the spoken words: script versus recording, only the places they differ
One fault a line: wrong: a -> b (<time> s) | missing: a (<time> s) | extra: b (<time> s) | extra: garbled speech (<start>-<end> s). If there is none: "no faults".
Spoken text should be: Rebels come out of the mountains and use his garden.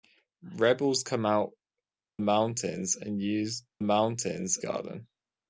missing: of the (1.5 s)
wrong: his -> mountains (3.8 s)